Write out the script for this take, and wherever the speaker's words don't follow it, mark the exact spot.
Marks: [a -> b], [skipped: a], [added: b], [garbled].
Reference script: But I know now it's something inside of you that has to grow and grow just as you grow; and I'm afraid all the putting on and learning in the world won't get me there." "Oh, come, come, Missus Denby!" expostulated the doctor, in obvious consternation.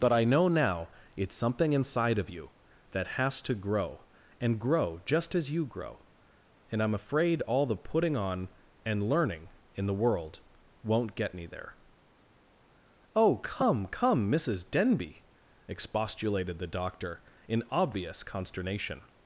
But I know now it's something inside of you that has to grow and grow just as you grow; and I'm afraid all the putting on and learning in the world won't get me there." "Oh, come, come, Missus Denby!" expostulated the doctor, in obvious consternation.